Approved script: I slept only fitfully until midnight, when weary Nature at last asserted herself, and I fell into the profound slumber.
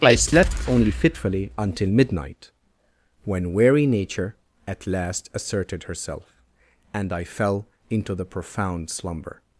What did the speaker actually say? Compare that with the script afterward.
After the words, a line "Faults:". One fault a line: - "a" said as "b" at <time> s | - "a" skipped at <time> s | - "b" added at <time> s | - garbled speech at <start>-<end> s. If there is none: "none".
I slept only fitfully until midnight, when weary Nature at last asserted herself, and I fell into the profound slumber.
Faults:
none